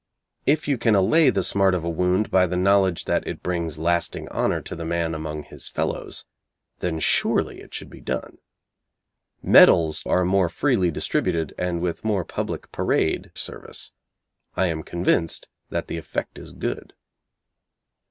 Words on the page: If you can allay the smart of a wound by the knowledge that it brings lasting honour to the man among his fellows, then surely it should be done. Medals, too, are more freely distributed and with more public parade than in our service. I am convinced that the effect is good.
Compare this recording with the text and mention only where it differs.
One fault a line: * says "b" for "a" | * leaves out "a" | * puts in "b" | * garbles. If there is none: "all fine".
* leaves out "too"
* leaves out "than in our"